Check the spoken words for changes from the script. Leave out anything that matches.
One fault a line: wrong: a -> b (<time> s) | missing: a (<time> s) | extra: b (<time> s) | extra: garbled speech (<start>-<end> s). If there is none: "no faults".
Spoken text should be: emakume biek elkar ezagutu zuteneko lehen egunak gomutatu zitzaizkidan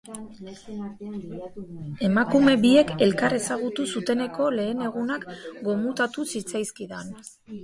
no faults